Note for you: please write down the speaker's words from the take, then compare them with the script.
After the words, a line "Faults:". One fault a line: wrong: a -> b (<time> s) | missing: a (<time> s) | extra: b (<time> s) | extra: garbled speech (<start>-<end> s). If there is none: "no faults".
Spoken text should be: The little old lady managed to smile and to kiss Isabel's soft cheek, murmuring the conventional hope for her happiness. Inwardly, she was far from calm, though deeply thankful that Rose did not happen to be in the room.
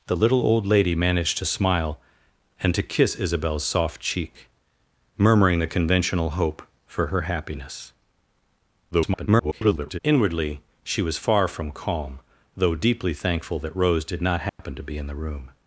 The little old lady managed to smile and to kiss Isabel's soft cheek, murmuring the conventional hope for her happiness. [garbled] Inwardly, she was far from calm, though deeply thankful that Rose did not happen to be in the room.
Faults:
extra: garbled speech (8.9-10.0 s)